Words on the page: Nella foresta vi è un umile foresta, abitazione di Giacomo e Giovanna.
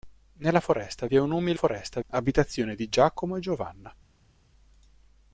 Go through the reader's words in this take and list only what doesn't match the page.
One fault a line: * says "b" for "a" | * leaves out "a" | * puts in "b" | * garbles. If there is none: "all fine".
all fine